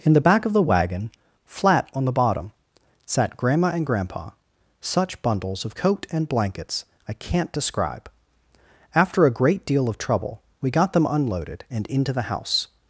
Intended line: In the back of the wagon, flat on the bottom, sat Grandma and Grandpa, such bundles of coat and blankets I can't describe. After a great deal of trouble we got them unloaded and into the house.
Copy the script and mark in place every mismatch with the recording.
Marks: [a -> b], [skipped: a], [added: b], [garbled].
In the back of the wagon, flat on the bottom, sat Grandma and Grandpa, such bundles of coat and blankets I can't describe. After a great deal of trouble we got them unloaded and into the house.